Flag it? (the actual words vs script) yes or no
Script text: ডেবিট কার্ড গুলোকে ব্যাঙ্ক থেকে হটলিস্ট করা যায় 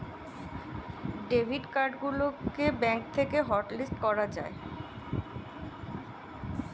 no